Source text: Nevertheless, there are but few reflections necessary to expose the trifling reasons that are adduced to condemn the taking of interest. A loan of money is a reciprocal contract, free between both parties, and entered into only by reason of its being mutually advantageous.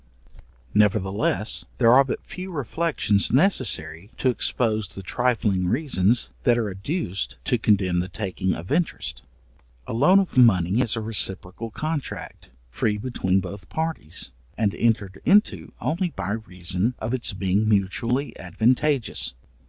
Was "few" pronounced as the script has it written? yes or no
yes